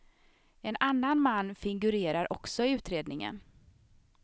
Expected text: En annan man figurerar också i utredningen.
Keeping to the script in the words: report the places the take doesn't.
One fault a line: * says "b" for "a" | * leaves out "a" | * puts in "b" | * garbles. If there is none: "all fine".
all fine